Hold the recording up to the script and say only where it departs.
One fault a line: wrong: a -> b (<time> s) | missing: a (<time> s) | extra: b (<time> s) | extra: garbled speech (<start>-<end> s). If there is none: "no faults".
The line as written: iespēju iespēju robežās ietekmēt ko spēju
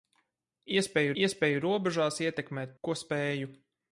no faults